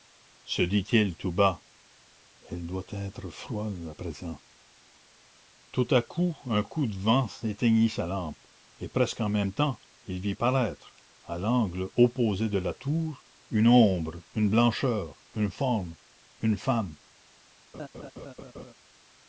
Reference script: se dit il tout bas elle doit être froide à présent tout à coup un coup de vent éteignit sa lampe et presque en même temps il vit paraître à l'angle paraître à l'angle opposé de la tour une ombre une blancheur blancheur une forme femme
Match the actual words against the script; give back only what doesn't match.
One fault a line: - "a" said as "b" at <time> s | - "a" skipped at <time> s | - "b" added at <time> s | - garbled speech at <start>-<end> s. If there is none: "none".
- "paraître à l'angle" skipped at 11.9 s
- "blancheur" skipped at 15.2 s
- "une" added at 16.4 s